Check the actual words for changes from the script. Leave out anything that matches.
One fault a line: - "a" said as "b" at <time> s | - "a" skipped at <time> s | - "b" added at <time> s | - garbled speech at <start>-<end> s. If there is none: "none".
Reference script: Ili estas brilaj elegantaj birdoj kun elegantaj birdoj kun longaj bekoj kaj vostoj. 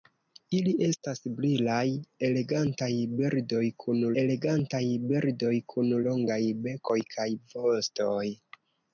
none